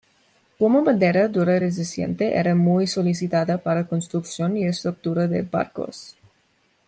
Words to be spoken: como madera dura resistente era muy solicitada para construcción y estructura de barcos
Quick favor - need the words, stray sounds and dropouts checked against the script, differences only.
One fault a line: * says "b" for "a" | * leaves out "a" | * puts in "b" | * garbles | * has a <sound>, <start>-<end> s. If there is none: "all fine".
all fine